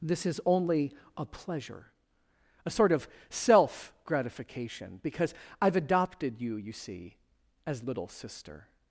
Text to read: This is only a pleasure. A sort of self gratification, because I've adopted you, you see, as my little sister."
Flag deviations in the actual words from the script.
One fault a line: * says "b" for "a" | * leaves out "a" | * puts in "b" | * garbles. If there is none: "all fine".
* leaves out "my"